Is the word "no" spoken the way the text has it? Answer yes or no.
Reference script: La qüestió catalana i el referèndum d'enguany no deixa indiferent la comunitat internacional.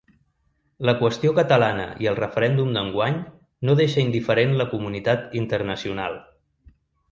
yes